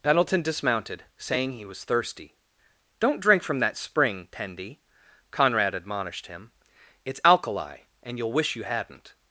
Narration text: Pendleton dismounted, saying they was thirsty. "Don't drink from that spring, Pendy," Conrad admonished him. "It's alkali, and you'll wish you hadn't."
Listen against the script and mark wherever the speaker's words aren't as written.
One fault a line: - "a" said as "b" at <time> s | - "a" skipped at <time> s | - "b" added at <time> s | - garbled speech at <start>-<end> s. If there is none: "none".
- "they" said as "he" at 1.5 s